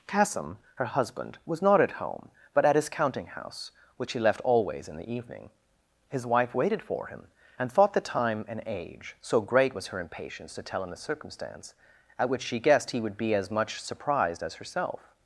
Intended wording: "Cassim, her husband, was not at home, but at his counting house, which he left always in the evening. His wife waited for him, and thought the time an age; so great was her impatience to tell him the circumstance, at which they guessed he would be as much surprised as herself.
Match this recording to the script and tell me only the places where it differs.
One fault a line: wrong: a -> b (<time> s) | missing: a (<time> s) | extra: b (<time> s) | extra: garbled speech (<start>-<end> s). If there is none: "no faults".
wrong: they -> she (12.4 s)